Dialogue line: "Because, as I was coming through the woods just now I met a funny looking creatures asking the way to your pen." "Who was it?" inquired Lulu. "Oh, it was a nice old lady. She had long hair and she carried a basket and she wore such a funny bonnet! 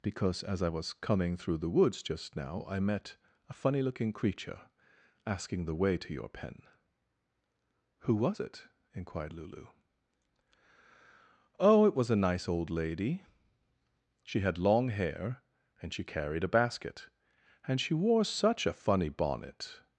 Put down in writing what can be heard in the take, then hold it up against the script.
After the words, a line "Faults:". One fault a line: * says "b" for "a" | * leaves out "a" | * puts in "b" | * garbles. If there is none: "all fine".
"Because, as I was coming through the woods just now I met a funny looking creature asking the way to your pen." "Who was it?" inquired Lulu. "Oh, it was a nice old lady. She had long hair and she carried a basket and she wore such a funny bonnet!
Faults:
* says "creature" for "creatures"